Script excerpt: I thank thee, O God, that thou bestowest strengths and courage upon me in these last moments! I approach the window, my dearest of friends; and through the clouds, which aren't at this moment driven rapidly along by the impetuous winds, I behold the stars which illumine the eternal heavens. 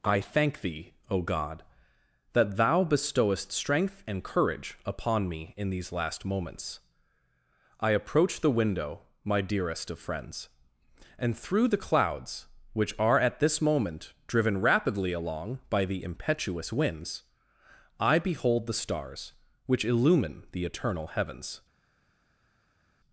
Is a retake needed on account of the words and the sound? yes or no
yes